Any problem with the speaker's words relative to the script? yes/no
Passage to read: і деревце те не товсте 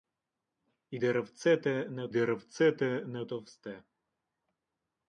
yes